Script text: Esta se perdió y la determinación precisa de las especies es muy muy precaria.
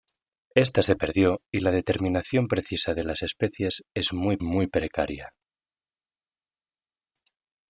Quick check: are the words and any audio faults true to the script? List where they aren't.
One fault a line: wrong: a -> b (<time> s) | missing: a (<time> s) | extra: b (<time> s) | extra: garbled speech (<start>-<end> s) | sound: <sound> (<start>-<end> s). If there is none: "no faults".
no faults